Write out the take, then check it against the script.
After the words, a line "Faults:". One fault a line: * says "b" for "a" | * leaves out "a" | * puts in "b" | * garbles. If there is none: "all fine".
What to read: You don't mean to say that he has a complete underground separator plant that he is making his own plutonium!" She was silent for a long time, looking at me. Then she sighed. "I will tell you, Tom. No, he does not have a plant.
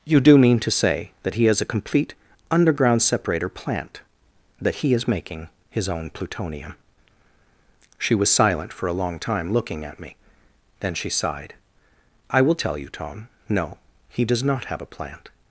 You do mean to say that he has a complete underground separator plant that he is making his own plutonium!" She was silent for a long time, looking at me. Then she sighed. "I will tell you, Tom. No, he does not have a plant.
Faults:
* says "do" for "don't"